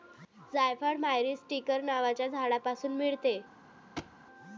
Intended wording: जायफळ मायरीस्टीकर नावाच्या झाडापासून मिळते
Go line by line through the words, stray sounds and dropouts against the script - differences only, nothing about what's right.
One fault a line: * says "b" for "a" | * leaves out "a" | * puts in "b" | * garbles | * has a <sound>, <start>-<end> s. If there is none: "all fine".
* has a thud, 4.0-4.1 s